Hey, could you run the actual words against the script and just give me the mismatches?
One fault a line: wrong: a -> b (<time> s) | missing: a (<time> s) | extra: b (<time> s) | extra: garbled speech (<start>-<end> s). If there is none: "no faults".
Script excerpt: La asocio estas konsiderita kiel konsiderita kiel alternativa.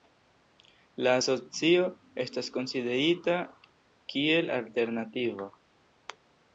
missing: konsiderita kiel (4.6 s)